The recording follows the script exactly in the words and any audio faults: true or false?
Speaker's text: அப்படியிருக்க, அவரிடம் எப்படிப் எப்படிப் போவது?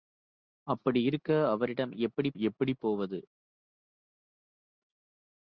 true